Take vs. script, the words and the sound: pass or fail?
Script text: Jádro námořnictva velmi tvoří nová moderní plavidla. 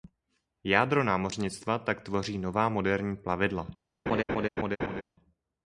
fail